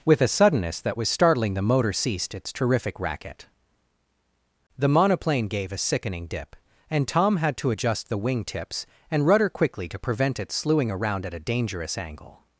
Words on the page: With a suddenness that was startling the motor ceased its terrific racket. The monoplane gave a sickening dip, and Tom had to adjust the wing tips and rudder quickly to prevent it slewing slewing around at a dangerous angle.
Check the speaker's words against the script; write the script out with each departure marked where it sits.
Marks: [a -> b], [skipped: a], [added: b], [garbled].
With a suddenness that was startling the motor ceased its terrific racket. The monoplane gave a sickening dip, and Tom had to adjust the wing tips and rudder quickly to prevent it slewing [skipped: slewing] around at a dangerous angle.